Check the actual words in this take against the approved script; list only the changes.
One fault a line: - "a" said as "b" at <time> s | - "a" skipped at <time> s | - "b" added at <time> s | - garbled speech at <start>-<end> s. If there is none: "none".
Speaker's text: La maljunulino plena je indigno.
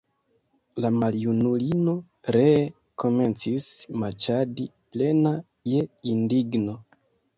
- "ree komencis maĉadi" added at 2.4 s